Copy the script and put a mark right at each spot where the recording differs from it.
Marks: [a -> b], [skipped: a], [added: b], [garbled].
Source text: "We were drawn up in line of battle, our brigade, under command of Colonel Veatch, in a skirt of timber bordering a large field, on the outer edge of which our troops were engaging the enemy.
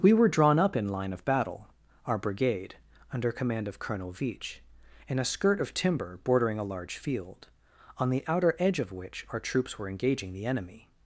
"We were drawn up in line of battle, our brigade, under command of Colonel Veatch, in a skirt of timber bordering a large field, on the outer edge of which our troops were engaging the enemy.